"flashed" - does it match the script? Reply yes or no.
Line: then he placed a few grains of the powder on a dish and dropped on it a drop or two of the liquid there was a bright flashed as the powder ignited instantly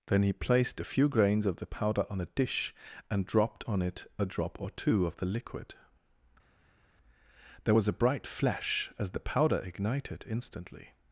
no